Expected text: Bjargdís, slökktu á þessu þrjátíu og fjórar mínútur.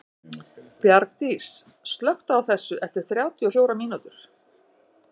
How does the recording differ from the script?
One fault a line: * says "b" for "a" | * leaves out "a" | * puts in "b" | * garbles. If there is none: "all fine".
* puts in "eftir"